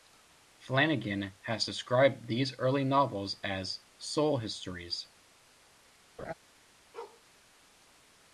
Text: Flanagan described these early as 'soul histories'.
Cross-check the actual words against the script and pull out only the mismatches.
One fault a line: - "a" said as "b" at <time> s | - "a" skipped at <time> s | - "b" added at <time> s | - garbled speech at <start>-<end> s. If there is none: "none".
- "has" added at 1.4 s
- "novels" added at 2.8 s